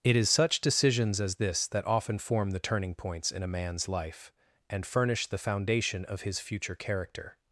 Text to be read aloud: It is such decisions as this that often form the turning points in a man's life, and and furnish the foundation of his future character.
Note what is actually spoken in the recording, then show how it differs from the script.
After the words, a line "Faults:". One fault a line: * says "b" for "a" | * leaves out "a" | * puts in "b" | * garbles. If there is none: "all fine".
It is such decisions as this that often form the turning points in a man's life, and furnish the foundation of his future character.
Faults:
* leaves out "and"